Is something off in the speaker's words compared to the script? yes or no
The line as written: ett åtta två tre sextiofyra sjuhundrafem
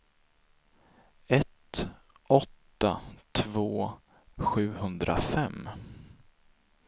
yes